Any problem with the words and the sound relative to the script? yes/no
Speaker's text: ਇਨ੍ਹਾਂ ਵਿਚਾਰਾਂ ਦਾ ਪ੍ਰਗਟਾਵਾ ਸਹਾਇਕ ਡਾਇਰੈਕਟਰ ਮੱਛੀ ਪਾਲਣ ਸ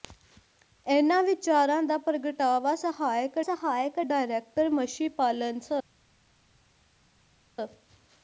yes